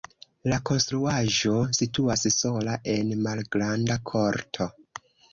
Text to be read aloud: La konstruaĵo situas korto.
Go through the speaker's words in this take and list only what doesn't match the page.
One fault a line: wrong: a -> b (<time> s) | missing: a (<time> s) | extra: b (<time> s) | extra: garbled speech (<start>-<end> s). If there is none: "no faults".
extra: sola en malgranda (2.4 s)